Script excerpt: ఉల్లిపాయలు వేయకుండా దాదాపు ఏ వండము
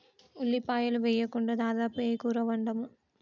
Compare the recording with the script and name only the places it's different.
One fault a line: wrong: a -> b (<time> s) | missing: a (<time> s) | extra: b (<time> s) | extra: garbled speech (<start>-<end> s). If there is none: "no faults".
extra: కూర (2.1 s)